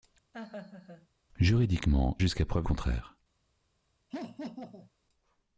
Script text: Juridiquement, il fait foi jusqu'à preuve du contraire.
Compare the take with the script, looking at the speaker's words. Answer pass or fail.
fail